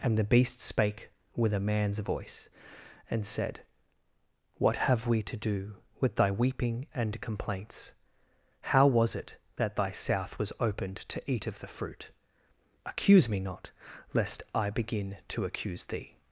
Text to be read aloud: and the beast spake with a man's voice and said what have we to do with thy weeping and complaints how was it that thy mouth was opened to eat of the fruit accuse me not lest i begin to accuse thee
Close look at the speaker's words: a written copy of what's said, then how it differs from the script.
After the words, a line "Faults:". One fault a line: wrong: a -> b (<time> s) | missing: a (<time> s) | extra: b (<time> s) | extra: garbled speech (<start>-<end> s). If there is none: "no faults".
and the beast spake with a man's voice and said what have we to do with thy weeping and complaints how was it that thy south was opened to eat of the fruit accuse me not lest i begin to accuse thee
Faults:
wrong: mouth -> south (9.9 s)